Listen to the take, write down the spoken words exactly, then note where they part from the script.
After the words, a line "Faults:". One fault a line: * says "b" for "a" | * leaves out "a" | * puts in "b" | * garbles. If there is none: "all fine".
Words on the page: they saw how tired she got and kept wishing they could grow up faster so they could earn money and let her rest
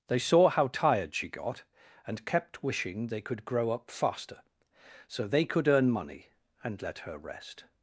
they saw how tired she got and kept wishing they could grow up faster so they could earn money and let her rest
Faults:
all fine